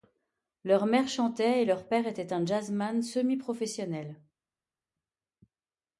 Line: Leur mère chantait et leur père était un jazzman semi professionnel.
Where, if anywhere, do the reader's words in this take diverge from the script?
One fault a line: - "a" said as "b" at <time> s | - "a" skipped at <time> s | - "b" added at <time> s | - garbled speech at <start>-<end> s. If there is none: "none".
none